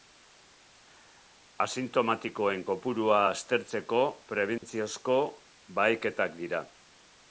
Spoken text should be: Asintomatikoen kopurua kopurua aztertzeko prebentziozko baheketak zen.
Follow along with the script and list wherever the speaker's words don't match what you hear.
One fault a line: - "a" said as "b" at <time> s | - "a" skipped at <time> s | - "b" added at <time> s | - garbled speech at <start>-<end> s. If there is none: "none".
- "kopurua" skipped at 3.2 s
- "zen" said as "dira" at 6.4 s